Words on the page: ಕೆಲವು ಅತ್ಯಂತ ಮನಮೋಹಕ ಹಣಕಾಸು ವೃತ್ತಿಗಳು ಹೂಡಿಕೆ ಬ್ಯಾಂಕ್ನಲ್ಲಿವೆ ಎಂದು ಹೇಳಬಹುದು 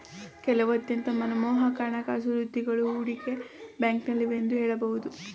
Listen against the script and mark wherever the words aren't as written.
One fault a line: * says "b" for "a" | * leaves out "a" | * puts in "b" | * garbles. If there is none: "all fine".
all fine